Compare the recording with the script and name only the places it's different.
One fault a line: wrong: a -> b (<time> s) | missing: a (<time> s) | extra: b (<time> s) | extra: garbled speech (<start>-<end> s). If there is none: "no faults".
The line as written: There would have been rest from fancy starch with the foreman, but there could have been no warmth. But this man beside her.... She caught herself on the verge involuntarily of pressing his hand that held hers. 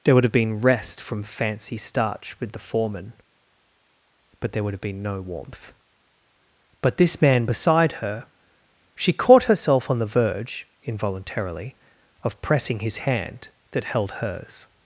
wrong: could -> would (4.6 s)